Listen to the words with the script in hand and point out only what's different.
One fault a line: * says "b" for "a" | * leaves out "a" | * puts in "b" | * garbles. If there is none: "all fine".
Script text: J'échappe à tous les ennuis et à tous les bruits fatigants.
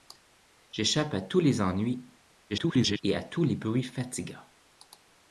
* garbles